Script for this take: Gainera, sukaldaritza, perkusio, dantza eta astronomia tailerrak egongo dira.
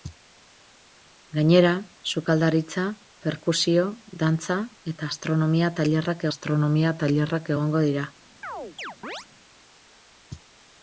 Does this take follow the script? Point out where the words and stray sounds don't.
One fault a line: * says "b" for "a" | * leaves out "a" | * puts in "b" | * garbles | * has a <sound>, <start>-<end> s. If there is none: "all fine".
* puts in "astronomia tailerrak"
* has a chirp, 8.4-9.3 s